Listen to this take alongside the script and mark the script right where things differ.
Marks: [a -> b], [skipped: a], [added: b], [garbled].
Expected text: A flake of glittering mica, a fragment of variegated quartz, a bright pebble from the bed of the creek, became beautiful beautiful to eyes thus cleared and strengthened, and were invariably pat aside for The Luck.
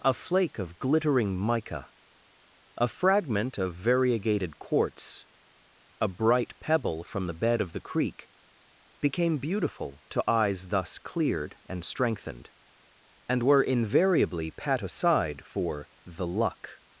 A flake of glittering mica, a fragment of variegated quartz, a bright pebble from the bed of the creek, became beautiful [skipped: beautiful] to eyes thus cleared and strengthened, and were invariably pat aside for The Luck.